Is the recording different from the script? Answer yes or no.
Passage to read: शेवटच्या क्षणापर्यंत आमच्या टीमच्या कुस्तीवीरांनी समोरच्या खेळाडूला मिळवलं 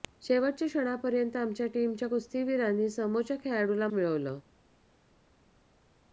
no